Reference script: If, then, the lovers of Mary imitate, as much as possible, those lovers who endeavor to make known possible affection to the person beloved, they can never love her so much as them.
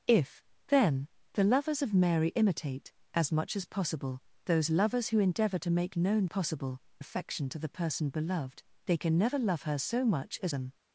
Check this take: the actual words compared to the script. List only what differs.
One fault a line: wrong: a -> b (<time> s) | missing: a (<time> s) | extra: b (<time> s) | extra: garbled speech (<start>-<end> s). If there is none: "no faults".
no faults